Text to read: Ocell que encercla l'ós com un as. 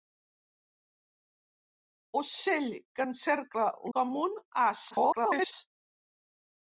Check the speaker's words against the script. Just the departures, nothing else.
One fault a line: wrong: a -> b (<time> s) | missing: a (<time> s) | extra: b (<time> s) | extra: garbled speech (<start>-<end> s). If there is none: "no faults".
missing: l'ós (3.7 s)
extra: garbled speech (4.9-5.5 s)